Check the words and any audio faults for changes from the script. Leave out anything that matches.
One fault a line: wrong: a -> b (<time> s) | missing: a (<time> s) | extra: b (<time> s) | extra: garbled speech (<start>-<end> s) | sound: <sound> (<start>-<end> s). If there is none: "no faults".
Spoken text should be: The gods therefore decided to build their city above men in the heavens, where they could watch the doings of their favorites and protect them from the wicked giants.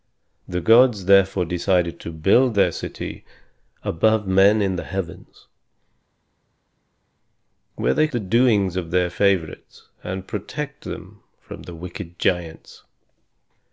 missing: could watch (8.1 s)